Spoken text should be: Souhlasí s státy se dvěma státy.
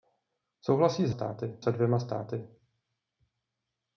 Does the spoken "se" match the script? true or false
true